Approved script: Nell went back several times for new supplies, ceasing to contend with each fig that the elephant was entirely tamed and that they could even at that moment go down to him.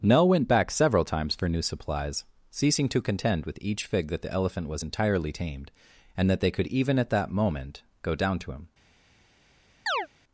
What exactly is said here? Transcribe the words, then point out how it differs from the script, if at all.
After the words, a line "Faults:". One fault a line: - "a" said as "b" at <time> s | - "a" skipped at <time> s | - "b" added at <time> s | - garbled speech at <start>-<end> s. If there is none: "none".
Nell went back several times for new supplies, ceasing to contend with each fig that the elephant was entirely tamed and that they could even at that moment go down to him.
Faults:
none